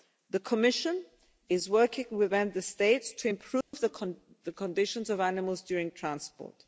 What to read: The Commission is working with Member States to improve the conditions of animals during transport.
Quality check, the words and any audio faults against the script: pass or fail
fail